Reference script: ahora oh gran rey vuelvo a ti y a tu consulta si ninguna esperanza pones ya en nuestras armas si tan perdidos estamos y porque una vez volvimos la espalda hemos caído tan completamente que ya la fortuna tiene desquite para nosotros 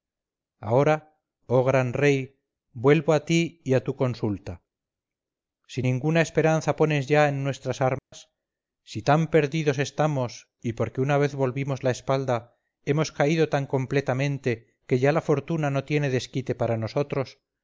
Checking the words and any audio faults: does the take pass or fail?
fail